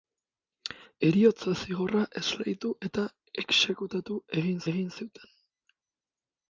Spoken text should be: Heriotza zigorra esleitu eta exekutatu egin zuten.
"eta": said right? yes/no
yes